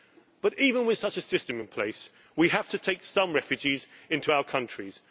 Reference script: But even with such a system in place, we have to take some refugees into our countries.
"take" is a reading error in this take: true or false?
false